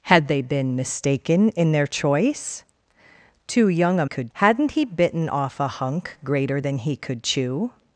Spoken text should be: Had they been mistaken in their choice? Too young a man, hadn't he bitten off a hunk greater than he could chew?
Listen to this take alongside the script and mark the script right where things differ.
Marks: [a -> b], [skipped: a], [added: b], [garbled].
Had they been mistaken in their choice? Too young a [man, -> could] hadn't he bitten off a hunk greater than he could chew?